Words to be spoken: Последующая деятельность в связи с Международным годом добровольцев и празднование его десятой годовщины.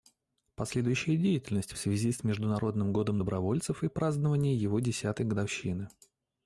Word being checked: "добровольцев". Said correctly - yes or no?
yes